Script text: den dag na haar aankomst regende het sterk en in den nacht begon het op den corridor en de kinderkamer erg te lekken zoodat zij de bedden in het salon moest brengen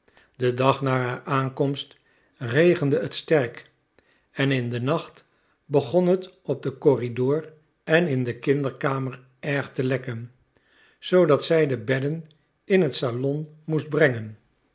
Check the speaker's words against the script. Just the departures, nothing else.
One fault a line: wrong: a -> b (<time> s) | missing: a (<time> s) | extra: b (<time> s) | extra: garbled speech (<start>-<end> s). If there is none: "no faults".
extra: in (8.1 s)